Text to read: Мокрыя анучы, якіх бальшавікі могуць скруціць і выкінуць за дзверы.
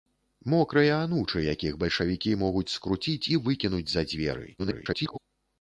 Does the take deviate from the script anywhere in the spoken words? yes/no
yes